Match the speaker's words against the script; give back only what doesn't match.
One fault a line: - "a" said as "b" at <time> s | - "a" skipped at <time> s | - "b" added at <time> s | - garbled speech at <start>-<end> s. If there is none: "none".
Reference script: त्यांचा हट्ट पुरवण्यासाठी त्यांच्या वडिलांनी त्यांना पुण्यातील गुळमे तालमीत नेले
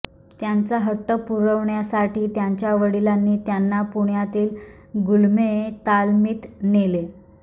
none